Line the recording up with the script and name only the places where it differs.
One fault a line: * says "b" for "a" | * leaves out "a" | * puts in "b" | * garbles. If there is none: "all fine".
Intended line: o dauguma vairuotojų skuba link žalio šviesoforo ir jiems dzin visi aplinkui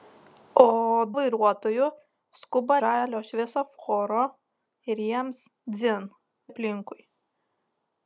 * leaves out "dauguma"
* leaves out "link"
* leaves out "visi"